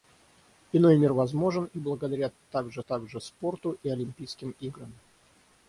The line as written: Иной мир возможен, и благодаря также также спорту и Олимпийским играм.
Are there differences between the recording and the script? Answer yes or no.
no